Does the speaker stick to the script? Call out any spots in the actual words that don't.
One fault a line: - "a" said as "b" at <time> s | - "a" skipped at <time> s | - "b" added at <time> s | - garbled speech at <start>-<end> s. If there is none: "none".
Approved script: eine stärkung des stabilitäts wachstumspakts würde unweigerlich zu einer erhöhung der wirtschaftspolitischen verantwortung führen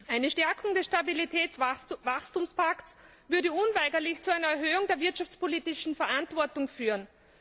none